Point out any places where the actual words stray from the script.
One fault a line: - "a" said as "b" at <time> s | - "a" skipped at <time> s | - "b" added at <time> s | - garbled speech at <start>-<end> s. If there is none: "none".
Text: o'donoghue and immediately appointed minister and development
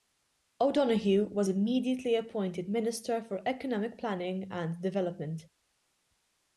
- "and" said as "was" at 1.3 s
- "for economic planning" added at 3.2 s